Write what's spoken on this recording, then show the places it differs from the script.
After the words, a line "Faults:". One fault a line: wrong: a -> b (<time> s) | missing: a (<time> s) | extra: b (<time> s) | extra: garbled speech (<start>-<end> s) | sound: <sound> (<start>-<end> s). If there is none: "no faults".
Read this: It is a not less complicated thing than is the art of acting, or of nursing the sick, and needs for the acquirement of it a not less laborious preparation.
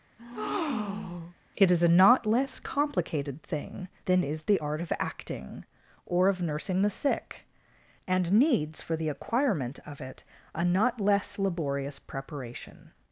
It is a not less complicated thing than is the art of acting, or of nursing the sick, and needs for the acquirement of it a not less laborious preparation.
Faults:
sound: breath (0.2-1.4 s)